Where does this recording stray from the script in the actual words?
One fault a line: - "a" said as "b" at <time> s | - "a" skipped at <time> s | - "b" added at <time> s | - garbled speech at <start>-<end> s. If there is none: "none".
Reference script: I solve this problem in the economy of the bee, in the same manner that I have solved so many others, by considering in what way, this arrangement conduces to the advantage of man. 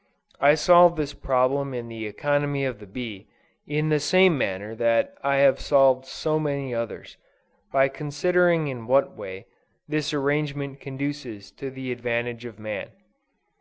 none